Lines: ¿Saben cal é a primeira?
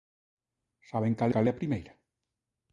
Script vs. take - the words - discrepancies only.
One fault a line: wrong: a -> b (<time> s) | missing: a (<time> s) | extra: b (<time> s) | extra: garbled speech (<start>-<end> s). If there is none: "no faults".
extra: cal (1.3 s)